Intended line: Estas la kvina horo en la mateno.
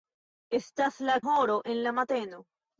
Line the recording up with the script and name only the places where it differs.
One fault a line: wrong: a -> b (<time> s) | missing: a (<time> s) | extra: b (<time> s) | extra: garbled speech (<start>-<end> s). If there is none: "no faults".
missing: kvina (1.2 s)